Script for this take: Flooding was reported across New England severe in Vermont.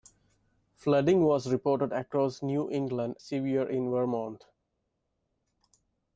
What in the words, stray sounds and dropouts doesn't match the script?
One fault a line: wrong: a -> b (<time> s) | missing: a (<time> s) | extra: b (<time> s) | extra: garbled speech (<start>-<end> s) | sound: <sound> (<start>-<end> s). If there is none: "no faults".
no faults